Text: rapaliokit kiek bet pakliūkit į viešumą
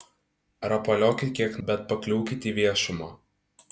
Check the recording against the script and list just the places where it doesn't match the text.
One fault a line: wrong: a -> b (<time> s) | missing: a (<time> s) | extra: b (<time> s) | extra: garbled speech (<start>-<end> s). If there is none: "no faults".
no faults